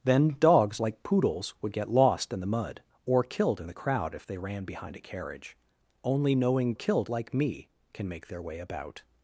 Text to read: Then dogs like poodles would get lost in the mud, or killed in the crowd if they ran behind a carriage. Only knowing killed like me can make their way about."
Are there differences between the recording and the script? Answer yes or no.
no